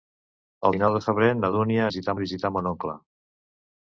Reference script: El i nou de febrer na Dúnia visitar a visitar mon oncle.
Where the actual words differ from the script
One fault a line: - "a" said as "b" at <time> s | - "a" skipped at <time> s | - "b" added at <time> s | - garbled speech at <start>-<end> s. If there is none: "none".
none